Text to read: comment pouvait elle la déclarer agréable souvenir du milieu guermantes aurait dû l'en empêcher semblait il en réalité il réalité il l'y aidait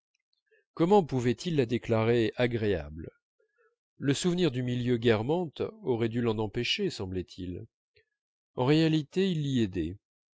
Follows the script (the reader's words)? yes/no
no